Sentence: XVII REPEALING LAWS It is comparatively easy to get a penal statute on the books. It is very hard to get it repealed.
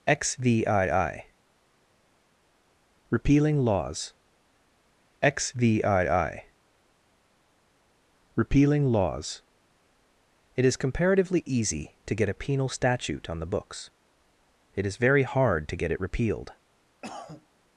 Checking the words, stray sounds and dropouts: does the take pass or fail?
fail